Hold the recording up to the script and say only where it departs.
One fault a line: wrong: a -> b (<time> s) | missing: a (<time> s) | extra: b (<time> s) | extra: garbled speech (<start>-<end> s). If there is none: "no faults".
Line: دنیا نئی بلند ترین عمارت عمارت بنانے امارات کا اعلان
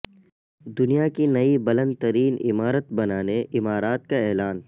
extra: کی (1.1 s)
missing: عمارت (2.9 s)